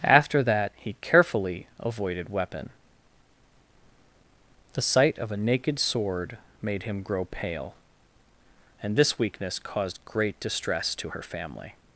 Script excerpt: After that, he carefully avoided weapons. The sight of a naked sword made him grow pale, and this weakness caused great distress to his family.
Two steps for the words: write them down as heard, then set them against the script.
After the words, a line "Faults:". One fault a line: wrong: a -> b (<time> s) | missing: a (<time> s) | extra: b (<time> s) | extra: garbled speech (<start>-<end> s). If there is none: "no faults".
After that, he carefully avoided weapon. The sight of a naked sword made him grow pale, and this weakness caused great distress to her family.
Faults:
wrong: weapons -> weapon (2.3 s)
wrong: his -> her (11.1 s)